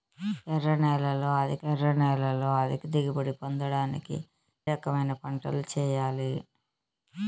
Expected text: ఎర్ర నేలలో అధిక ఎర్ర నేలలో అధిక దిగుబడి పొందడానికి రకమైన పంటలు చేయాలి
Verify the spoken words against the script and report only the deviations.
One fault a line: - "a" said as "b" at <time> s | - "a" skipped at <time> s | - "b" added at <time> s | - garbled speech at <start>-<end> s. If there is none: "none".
none